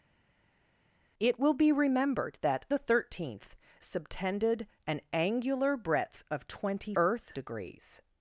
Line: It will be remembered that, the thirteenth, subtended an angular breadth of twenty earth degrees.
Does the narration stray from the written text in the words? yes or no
no